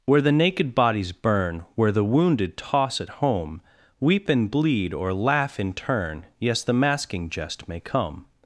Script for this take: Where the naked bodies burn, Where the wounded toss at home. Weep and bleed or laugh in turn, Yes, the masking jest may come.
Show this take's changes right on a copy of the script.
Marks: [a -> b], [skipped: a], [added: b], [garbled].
Where the naked bodies burn, Where the wounded toss at home. Weep and bleed or laugh in turn, Yes, the masking jest may come.